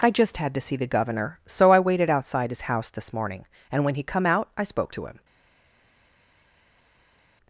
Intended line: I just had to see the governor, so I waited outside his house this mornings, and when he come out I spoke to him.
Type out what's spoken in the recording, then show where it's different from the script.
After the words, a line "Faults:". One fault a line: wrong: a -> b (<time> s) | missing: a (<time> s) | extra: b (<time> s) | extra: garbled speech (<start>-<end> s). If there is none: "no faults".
I just had to see the governor, so I waited outside his house this morning, and when he come out I spoke to him.
Faults:
wrong: mornings -> morning (3.1 s)